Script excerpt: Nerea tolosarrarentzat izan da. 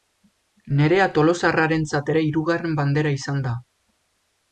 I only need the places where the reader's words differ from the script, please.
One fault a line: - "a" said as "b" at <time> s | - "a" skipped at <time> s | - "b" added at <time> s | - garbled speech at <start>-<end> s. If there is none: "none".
- "ere hirugarren bandera" added at 2.1 s